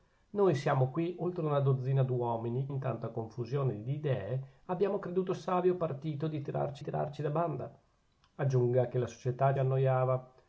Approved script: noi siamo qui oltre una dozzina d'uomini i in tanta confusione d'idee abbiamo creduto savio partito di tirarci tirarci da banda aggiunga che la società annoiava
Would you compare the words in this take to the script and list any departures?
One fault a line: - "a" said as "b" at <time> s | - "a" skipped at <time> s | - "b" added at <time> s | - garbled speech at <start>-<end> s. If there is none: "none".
none